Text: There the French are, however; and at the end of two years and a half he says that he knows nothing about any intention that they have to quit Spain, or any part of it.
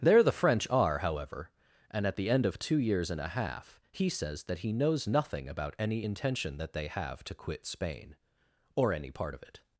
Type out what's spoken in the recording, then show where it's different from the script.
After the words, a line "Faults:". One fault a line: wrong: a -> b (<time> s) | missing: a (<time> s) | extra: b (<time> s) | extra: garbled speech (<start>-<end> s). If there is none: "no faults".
There the French are, however; and at the end of two years and a half he says that he knows nothing about any intention that they have to quit Spain, or any part of it.
Faults:
no faults